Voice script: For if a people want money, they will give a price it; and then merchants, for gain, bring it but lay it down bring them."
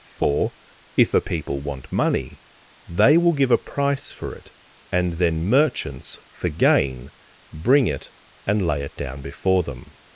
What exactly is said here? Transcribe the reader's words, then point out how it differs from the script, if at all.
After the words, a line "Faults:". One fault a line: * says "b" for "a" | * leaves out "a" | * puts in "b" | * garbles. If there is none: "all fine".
For if a people want money, they will give a price for it; and then merchants, for gain, bring it and lay it down before them."
Faults:
* puts in "for"
* says "and" for "but"
* says "before" for "bring"